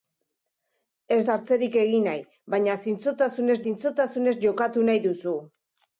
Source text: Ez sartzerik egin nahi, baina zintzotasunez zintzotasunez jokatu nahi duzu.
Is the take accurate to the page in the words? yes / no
yes